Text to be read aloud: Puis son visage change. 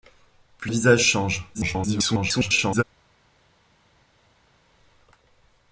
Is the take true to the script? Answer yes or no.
no